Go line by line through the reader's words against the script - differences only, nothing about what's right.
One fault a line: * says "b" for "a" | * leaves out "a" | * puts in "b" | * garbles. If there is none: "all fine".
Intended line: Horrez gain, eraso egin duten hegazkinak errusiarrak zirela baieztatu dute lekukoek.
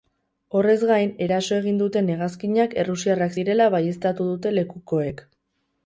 all fine